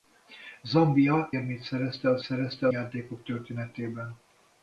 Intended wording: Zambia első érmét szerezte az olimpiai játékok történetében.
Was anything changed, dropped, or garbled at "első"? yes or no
yes